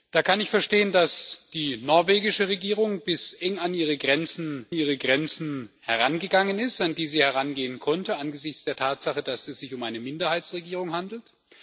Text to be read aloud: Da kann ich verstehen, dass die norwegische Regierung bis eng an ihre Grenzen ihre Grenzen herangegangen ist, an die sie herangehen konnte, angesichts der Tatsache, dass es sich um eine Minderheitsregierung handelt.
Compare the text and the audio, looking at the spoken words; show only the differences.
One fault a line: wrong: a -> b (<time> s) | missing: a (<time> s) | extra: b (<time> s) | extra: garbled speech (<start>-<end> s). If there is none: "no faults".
no faults